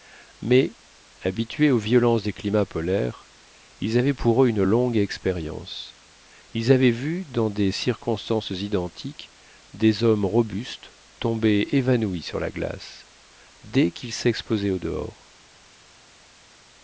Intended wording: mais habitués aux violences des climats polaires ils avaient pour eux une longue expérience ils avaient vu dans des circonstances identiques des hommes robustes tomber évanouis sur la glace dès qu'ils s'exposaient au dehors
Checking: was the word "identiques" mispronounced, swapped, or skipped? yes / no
no